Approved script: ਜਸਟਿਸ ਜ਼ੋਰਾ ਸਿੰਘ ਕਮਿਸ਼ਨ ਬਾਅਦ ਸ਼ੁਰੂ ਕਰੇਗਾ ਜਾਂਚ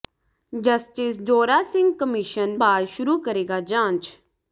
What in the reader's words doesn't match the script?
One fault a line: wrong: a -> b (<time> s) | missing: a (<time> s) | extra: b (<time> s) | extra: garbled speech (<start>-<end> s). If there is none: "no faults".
no faults